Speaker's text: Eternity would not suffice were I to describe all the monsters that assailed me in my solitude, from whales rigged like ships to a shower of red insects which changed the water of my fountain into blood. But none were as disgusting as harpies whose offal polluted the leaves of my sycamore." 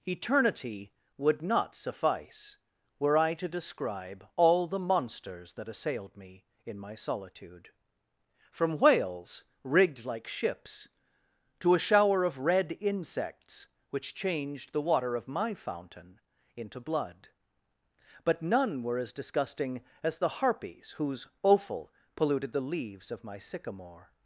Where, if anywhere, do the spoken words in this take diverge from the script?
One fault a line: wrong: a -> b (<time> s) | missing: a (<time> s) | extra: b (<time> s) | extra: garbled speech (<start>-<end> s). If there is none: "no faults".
extra: the (20.2 s)